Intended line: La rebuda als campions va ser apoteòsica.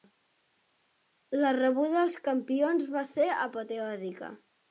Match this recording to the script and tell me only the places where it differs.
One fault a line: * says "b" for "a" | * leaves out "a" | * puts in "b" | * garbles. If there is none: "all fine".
all fine